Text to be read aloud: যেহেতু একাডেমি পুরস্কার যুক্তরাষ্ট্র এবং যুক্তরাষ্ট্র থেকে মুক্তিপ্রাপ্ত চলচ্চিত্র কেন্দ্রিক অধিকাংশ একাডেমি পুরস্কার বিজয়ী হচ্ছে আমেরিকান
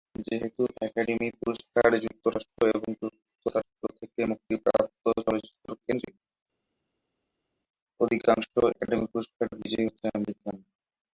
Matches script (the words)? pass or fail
pass